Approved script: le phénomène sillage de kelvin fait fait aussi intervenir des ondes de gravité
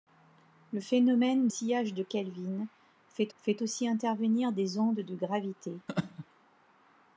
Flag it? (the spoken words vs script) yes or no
no